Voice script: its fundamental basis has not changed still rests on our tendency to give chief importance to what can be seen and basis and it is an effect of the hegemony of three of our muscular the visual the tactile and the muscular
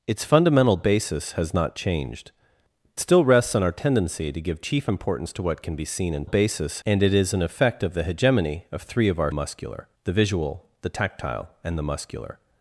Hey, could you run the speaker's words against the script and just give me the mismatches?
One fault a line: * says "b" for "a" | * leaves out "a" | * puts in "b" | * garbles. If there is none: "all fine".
all fine